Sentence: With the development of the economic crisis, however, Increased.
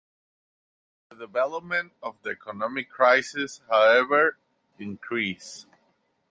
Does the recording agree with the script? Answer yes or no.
yes